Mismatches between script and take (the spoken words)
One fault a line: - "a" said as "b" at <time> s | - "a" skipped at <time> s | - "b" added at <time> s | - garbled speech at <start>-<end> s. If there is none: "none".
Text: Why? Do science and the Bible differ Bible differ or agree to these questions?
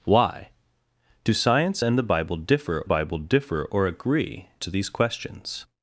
none